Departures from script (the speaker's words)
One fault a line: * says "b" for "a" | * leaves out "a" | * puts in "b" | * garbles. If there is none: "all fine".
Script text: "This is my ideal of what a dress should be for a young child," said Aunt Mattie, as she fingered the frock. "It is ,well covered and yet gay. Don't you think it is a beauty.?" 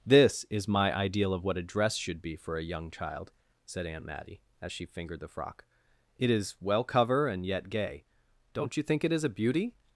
* says "cover" for "covered"